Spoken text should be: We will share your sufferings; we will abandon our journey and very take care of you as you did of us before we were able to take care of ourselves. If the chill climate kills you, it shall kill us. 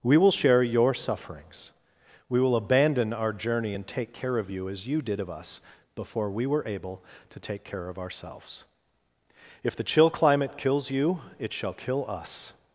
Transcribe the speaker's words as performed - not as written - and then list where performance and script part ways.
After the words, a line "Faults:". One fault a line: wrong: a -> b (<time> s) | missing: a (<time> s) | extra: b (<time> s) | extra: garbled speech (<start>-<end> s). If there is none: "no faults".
We will share your sufferings; we will abandon our journey and take care of you as you did of us before we were able to take care of ourselves. If the chill climate kills you, it shall kill us.
Faults:
missing: very (3.9 s)